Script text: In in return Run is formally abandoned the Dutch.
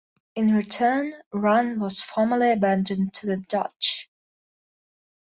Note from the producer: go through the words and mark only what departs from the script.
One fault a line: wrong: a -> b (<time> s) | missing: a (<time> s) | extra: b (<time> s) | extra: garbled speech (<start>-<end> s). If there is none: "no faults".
missing: in (0.6 s)
wrong: is -> was (1.8 s)
extra: to (3.1 s)